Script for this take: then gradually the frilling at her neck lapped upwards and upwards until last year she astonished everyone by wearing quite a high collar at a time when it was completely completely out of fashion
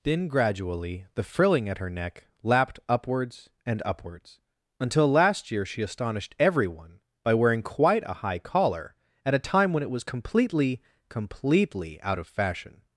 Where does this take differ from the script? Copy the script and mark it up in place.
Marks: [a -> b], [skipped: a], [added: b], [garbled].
then gradually the frilling at her neck lapped upwards and upwards until last year she astonished everyone by wearing quite a high collar at a time when it was completely completely out of fashion